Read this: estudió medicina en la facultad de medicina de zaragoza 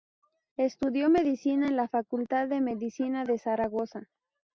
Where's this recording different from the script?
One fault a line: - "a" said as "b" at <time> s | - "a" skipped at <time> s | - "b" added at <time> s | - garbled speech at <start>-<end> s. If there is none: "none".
none